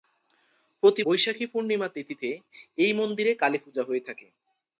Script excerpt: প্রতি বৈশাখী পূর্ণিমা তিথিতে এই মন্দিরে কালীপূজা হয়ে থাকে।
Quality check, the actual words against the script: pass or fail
pass